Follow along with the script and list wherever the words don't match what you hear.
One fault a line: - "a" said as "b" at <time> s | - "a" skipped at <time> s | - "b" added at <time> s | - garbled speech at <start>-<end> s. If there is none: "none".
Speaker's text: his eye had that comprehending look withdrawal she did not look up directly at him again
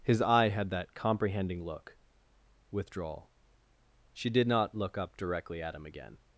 none